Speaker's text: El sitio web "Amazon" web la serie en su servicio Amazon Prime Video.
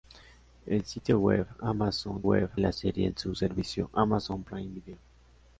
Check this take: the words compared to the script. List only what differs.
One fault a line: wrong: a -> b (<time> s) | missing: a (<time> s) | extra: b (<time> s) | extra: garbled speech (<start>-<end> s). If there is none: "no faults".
no faults